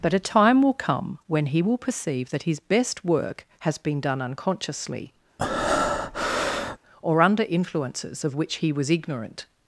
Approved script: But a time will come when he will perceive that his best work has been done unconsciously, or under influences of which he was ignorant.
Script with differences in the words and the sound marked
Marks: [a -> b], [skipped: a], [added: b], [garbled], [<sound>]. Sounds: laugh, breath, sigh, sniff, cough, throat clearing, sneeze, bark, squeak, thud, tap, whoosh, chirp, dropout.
But a time will come when he will perceive that his best work has been done unconsciously, [breath] or under influences of which he was ignorant.